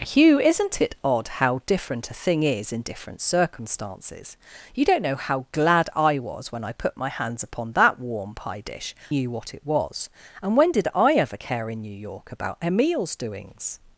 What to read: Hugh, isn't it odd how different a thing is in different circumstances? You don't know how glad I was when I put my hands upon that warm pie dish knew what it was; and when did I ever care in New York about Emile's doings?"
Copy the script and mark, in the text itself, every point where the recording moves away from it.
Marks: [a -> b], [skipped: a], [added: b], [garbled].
Hugh, isn't it odd how different a thing is in different circumstances? You don't know how glad I was when I put my hands upon that warm pie dish knew what it was; and when did I ever care in New York about Emile's doings?"